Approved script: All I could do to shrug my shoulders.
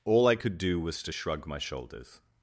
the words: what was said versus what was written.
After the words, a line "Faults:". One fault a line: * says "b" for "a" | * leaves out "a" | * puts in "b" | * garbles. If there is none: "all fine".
All I could do was to shrug my shoulders.
Faults:
* puts in "was"